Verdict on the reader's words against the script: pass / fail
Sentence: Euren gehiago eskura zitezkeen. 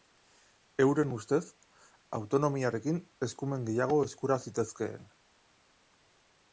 fail